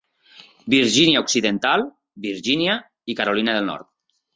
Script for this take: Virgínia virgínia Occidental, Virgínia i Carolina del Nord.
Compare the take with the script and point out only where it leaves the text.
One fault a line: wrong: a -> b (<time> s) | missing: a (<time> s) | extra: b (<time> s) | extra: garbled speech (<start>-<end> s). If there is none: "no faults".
missing: virgínia (1.2 s)